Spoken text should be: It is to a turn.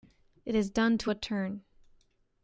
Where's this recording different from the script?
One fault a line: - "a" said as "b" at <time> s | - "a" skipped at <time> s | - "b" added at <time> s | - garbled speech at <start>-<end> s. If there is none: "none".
- "done" added at 0.7 s